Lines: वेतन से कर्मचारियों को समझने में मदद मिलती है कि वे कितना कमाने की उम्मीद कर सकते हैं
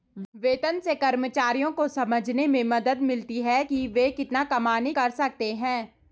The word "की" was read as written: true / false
false